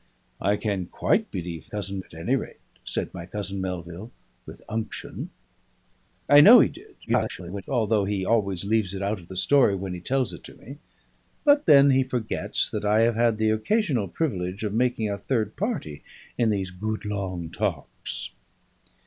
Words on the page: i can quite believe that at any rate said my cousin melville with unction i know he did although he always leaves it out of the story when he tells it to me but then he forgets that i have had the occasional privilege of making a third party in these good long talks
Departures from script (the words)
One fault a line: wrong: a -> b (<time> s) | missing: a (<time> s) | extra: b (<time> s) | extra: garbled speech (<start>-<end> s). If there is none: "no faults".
wrong: that -> cousin (1.7 s)
extra: garbled speech (7.1-7.6 s)